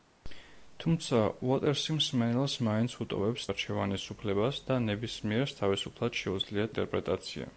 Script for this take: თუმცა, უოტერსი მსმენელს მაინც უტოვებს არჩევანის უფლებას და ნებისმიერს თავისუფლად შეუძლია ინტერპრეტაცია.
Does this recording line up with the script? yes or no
yes